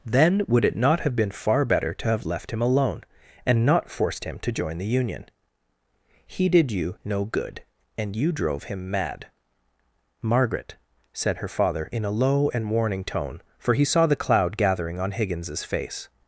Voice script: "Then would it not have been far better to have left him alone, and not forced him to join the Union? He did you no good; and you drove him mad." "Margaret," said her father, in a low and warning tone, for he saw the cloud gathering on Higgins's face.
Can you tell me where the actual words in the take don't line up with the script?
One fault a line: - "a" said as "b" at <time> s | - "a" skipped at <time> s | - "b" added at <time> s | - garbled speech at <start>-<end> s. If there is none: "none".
none